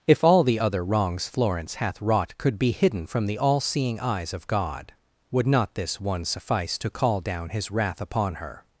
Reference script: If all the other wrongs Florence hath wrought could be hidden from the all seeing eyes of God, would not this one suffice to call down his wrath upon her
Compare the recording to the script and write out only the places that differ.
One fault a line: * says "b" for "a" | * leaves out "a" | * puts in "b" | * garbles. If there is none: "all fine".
all fine